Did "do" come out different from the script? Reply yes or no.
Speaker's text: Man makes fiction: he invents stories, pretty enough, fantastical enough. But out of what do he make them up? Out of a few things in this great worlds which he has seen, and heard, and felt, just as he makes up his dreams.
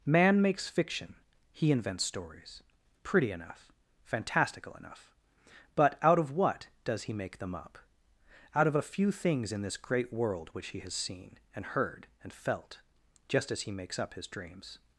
yes